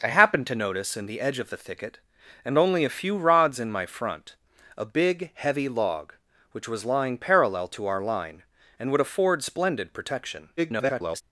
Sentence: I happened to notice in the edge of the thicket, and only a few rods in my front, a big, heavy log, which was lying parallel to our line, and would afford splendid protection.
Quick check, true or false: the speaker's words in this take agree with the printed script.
false